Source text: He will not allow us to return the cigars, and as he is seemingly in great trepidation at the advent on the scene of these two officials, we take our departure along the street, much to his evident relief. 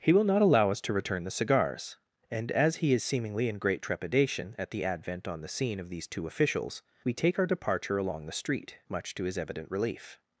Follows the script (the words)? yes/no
yes